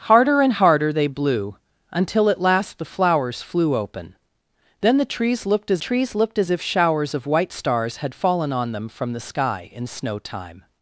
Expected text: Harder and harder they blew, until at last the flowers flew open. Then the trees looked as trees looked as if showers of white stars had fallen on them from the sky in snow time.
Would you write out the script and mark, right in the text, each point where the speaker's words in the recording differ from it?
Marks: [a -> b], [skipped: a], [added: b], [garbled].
Harder and harder they blew, until at last the flowers flew open. Then the trees looked as trees looked as if showers of white stars had fallen on them from the sky in snow time.